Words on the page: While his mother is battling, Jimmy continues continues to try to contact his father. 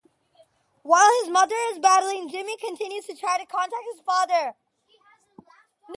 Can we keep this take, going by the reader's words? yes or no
no